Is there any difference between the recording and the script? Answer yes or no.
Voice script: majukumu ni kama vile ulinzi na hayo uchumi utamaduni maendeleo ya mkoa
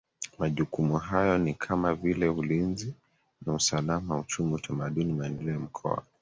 yes